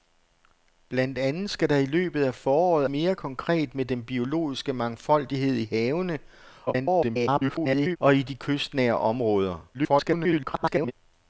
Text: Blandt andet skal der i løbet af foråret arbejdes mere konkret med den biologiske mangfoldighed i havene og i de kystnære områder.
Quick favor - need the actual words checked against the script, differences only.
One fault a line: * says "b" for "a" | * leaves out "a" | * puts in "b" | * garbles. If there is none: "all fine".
* leaves out "arbejdes"
* garbles
* garbles